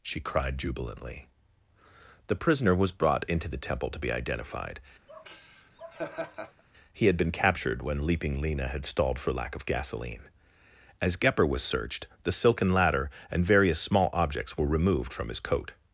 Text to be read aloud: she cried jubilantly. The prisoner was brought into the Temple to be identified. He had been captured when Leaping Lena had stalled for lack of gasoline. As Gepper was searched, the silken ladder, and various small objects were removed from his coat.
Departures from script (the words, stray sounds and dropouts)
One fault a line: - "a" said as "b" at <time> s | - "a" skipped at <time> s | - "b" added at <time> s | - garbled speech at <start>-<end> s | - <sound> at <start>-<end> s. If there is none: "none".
- laugh at 5.1-6.6 s